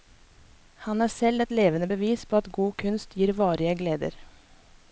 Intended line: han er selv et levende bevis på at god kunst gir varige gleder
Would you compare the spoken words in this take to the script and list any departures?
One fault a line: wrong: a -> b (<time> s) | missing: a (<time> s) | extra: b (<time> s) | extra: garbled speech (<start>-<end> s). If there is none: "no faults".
no faults